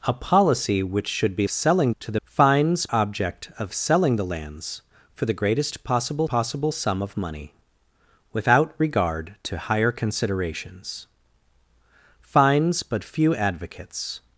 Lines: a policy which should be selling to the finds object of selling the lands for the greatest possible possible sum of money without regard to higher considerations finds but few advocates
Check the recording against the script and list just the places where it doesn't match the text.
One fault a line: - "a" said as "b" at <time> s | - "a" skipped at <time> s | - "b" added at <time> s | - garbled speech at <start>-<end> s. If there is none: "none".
none